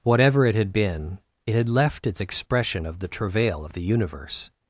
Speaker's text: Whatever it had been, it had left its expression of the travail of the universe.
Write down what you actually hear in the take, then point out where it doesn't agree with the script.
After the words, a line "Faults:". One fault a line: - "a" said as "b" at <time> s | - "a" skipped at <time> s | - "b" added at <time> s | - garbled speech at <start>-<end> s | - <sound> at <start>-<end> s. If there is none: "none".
Whatever it had been, it had left its expression of the travail of the universe.
Faults:
none